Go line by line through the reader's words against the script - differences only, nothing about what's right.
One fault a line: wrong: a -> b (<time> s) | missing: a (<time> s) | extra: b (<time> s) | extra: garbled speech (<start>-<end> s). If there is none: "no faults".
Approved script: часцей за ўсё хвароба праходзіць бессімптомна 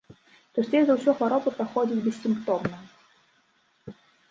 no faults